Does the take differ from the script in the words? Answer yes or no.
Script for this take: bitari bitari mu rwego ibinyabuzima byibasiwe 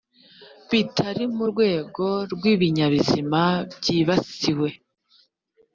yes